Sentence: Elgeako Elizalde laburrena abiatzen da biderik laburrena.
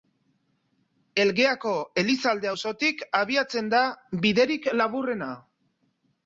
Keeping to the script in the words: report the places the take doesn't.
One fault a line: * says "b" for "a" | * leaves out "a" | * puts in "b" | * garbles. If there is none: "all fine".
* says "auzotik" for "laburrena"